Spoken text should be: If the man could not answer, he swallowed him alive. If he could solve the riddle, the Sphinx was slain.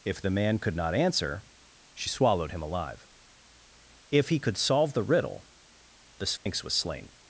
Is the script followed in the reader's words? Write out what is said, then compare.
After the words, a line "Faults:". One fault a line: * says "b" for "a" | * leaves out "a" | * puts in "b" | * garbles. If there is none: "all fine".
If the man could not answer, she swallowed him alive. If he could solve the riddle, the Sphinx was slain.
Faults:
* says "she" for "he"